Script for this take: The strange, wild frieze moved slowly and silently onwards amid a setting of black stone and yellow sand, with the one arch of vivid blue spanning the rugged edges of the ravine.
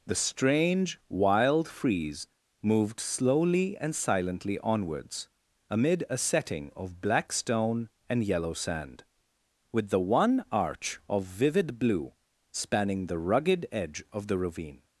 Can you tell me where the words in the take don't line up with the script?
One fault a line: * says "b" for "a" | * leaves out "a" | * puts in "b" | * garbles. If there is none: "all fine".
* says "edge" for "edges"